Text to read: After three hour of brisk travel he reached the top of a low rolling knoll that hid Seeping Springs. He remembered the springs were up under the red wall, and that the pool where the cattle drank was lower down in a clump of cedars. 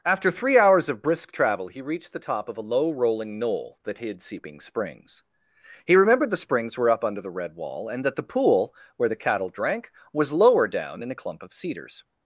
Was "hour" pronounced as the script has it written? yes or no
no